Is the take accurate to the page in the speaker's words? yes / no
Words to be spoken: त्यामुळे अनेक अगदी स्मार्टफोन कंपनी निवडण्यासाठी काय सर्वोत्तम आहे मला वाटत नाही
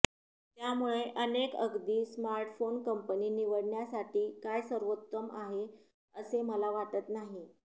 no